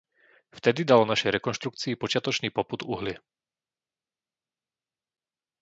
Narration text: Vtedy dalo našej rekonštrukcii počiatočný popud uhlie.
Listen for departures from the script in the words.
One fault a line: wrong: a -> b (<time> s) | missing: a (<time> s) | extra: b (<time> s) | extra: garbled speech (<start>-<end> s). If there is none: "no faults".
no faults